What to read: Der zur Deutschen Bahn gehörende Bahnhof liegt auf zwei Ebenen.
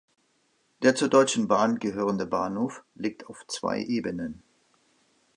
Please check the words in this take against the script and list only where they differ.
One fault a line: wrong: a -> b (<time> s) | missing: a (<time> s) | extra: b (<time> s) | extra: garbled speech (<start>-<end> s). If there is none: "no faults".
no faults